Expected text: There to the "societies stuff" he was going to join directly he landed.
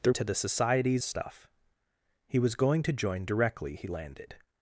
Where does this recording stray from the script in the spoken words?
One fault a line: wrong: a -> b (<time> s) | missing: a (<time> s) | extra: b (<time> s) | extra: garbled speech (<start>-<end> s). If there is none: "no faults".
no faults